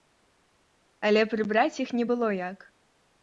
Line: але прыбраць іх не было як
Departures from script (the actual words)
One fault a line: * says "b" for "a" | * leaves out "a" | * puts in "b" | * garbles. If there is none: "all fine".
all fine